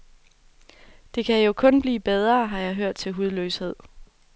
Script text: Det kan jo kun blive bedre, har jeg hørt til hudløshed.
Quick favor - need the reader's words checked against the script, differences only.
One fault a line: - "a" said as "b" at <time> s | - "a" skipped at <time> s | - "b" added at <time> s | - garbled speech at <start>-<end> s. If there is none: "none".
none